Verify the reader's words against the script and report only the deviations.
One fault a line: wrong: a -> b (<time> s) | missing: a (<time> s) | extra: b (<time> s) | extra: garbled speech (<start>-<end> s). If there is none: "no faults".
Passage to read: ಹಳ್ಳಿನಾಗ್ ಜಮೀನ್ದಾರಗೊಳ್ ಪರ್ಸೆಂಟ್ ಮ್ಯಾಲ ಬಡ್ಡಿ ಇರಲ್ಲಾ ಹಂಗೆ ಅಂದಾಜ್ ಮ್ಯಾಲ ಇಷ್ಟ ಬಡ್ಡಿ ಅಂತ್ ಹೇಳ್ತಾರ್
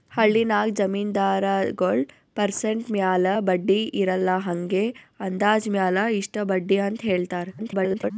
extra: garbled speech (7.6-8.1 s)